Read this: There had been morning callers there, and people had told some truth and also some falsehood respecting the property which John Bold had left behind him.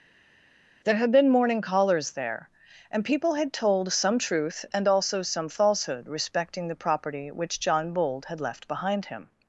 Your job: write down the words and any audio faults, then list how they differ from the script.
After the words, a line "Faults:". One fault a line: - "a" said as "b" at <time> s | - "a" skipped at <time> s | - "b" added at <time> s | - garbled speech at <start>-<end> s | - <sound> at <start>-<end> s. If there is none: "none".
There had been morning callers there, and people had told some truth and also some falsehood respecting the property which John Bold had left behind him.
Faults:
none